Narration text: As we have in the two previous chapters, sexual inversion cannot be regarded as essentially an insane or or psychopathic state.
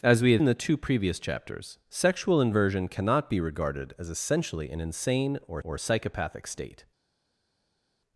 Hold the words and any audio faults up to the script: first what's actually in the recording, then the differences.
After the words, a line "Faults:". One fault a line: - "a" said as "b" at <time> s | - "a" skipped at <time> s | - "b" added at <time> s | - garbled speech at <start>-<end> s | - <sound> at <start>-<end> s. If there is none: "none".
As we have in the two previous chapters, sexual inversion cannot be regarded as essentially an insane or or psychopathic state.
Faults:
none